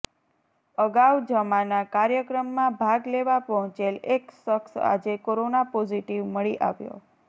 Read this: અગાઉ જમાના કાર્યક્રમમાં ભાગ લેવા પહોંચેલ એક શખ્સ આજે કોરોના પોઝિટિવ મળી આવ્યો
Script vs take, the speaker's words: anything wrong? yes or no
no